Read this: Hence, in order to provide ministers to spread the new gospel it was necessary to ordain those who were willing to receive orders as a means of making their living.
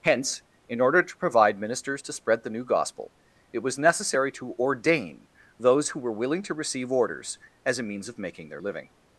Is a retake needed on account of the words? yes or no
no